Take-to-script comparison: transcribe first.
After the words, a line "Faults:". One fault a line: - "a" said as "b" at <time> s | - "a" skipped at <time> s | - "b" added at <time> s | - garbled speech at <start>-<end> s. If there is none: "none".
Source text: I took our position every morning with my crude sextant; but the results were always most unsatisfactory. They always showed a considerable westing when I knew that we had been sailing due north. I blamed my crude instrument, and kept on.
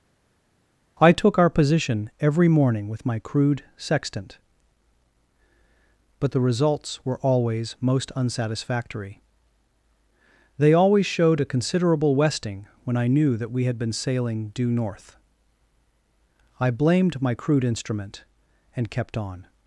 I took our position every morning with my crude sextant; but the results were always most unsatisfactory. They always showed a considerable westing when I knew that we had been sailing due north. I blamed my crude instrument, and kept on.
Faults:
none